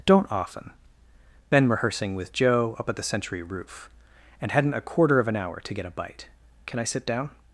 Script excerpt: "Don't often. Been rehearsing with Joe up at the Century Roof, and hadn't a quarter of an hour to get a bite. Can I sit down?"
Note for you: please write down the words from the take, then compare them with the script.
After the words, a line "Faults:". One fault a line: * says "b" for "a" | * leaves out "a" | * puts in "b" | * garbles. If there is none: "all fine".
"Don't often. Been rehearsing with Joe up at the Century Roof, and hadn't a quarter of an hour to get a bite. Can I sit down?"
Faults:
all fine